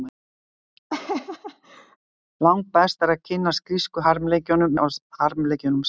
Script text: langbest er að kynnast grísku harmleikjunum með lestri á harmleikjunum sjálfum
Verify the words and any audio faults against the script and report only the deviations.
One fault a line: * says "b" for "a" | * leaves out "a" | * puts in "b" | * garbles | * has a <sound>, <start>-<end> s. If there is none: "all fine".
* has a laugh, 0.9-2.0 s
* leaves out "með lestri"